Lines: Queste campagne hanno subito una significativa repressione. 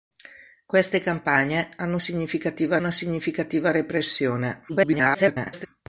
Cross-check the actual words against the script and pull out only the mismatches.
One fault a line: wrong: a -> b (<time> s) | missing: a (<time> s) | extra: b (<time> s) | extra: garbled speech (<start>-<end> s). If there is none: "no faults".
wrong: subito -> significativa (2.0 s)
extra: garbled speech (4.7-5.7 s)